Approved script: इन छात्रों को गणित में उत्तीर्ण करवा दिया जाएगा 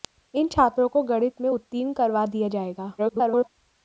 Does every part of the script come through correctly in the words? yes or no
no